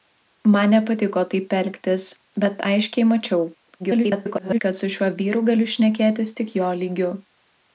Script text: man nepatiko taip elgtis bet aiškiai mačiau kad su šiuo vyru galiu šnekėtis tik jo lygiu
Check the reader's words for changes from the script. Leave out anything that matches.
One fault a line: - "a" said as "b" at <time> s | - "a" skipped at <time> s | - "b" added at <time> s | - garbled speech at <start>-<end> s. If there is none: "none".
- garbled speech at 3.8-4.6 s